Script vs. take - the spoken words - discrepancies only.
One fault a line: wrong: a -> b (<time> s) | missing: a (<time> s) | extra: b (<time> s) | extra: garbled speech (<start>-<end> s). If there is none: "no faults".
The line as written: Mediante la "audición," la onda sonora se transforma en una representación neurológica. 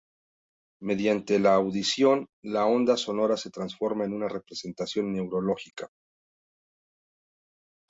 no faults